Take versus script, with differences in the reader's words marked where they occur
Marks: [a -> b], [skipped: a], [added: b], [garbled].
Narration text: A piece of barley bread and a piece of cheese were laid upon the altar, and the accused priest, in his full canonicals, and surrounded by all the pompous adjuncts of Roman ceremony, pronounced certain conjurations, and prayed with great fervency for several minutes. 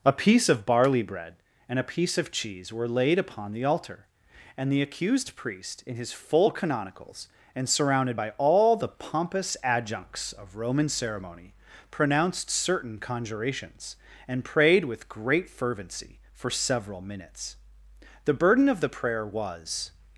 A piece of barley bread and a piece of cheese were laid upon the altar, and the accused priest, in his full canonicals, and surrounded by all the pompous adjuncts of Roman ceremony, pronounced certain conjurations, and prayed with great fervency for several minutes. [added: The burden of the prayer was]